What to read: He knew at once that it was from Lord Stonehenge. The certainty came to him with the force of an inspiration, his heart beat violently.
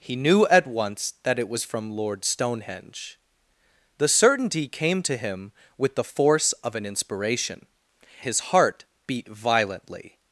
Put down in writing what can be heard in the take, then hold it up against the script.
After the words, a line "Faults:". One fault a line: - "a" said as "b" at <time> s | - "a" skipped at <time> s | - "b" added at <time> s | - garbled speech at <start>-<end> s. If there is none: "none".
He knew at once that it was from Lord Stonehenge. The certainty came to him with the force of an inspiration, his heart beat violently.
Faults:
none